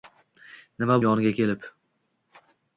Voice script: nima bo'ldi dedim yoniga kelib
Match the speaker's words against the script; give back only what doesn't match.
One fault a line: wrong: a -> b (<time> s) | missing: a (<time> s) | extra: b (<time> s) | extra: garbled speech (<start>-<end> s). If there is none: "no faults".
missing: bo'ldi dedim (1.0 s)